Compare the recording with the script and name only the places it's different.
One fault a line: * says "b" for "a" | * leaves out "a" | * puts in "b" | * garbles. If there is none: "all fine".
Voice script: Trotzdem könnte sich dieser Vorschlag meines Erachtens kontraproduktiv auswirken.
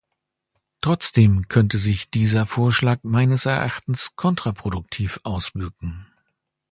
all fine